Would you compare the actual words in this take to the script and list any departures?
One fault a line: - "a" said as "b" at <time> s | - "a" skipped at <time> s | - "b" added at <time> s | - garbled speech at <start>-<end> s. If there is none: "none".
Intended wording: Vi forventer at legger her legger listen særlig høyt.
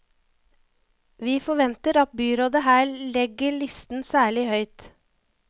- "legger" said as "byrådet" at 2.2 s